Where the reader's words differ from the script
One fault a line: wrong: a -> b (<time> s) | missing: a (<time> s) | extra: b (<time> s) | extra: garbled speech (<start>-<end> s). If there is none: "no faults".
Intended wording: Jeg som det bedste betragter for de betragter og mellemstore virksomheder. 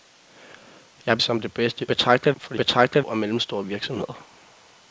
no faults